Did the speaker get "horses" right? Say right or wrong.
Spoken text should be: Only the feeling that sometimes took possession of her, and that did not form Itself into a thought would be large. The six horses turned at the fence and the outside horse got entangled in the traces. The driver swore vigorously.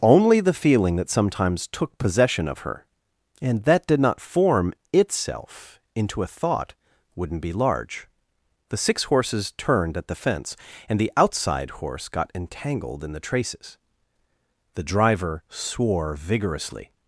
right